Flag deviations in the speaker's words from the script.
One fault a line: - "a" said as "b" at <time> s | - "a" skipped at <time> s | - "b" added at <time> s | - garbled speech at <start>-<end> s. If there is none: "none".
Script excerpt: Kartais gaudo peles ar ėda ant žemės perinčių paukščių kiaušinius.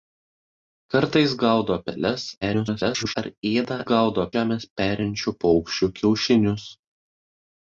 - garbled speech at 2.4-3.1 s
- "ant" said as "gaudo" at 3.9 s